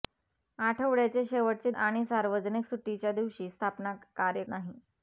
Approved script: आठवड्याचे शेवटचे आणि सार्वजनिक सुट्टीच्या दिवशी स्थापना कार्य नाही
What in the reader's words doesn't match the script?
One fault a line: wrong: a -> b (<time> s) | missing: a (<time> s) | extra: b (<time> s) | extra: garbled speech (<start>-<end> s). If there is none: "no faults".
no faults